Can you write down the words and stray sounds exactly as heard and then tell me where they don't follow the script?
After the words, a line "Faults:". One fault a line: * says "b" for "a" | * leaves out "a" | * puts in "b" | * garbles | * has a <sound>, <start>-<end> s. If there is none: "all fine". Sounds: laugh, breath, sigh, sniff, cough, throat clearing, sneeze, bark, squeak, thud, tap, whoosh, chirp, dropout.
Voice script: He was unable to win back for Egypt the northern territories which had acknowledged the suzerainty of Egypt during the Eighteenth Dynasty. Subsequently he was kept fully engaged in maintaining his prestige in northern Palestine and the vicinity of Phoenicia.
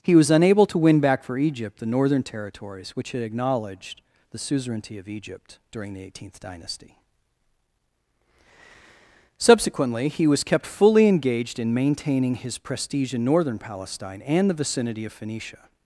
He was unable to win back for Egypt the northern territories which had acknowledged the suzerainty of Egypt during the Eighteenth Dynasty. Subsequently he was kept fully engaged in maintaining his prestige in northern Palestine and the vicinity of Phoenicia.
Faults:
all fine